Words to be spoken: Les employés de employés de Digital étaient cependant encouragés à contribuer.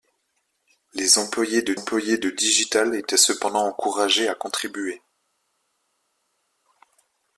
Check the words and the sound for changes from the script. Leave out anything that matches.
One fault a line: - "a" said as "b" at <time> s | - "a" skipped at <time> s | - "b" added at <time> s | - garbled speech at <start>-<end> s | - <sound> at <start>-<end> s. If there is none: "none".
none